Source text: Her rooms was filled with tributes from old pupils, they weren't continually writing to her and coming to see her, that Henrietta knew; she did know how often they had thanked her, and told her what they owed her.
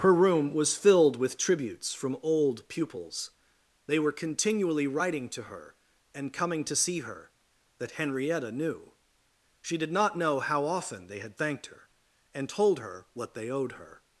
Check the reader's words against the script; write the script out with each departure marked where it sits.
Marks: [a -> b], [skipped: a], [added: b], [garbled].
Her [rooms -> room] was filled with tributes from old pupils, they [weren't -> were] continually writing to her and coming to see her, that Henrietta knew; she did [added: not] know how often they had thanked her, and told her what they owed her.